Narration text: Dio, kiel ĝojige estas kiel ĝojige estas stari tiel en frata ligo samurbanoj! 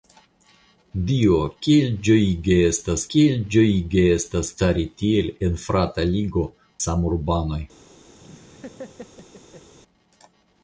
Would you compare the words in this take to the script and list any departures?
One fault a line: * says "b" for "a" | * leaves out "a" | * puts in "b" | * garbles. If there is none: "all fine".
all fine